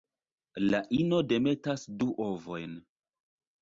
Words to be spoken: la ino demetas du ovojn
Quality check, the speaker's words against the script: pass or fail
pass